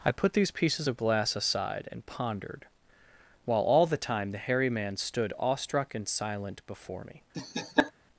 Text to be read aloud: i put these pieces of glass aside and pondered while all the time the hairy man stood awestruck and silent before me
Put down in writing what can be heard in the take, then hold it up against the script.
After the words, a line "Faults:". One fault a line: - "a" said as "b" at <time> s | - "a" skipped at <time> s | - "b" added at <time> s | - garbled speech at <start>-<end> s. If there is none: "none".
i put these pieces of glass aside and pondered while all the time the hairy man stood awestruck and silent before me
Faults:
none